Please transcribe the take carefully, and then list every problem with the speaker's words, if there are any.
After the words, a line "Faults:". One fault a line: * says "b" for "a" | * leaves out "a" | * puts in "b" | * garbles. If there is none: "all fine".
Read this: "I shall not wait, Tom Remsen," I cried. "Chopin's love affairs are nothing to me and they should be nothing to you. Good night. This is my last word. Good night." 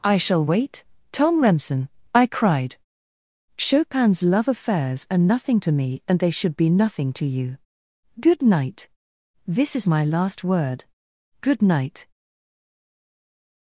"I shall wait, Tom Remsen," I cried. "Chopin's love affairs are nothing to me and they should be nothing to you. Good night. This is my last word. Good night."
Faults:
* leaves out "not"